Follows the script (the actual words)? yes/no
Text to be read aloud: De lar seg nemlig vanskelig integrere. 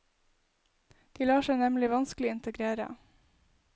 yes